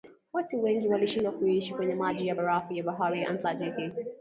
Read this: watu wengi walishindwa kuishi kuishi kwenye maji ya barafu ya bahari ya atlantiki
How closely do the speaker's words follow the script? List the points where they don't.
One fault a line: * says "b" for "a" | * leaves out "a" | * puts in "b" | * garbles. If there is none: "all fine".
* leaves out "kuishi"